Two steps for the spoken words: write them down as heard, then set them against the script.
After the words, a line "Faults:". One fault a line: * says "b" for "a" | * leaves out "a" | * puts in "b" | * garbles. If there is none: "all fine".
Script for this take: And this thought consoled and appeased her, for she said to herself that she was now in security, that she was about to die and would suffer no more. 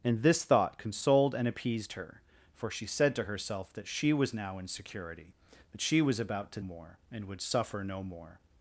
And this thought consoled and appeased her, for she said to herself that she was now in security, that she was about to more and would suffer no more.
Faults:
* says "more" for "die"